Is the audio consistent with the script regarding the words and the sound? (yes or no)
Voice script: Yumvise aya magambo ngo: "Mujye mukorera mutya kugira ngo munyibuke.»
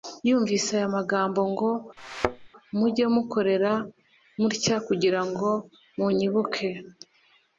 no